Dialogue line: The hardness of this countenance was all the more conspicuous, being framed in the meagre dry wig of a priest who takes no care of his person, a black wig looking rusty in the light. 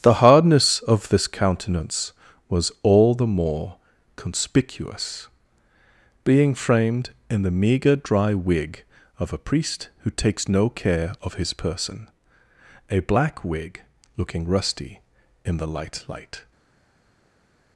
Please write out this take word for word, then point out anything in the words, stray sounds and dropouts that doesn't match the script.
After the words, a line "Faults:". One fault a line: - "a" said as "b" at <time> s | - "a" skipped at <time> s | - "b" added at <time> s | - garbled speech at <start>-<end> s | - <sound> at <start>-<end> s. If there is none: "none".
The hardness of this countenance was all the more conspicuous, being framed in the meagre dry wig of a priest who takes no care of his person, a black wig looking rusty in the light light.
Faults:
- "light" added at 16.1 s